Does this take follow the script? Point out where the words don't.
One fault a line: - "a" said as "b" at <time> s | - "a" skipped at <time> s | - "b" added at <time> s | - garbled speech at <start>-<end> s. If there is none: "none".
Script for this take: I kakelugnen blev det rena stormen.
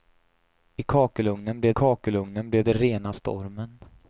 - "kakelugnen blev" added at 1.7 s